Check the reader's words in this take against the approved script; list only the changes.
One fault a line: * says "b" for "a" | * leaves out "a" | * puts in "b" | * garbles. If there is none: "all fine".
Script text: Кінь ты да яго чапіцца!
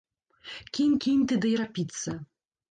* puts in "кінь"
* leaves out "яго"